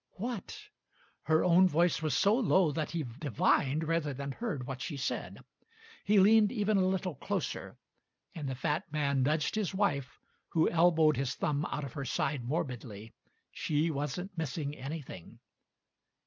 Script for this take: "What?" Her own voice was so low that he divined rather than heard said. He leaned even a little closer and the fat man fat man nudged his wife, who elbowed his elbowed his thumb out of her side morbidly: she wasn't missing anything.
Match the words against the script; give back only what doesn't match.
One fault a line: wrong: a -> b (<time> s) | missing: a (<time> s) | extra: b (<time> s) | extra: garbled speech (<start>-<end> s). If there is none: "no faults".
extra: what she (4.7 s)
missing: fat man (9.2 s)
missing: elbowed his (11.3 s)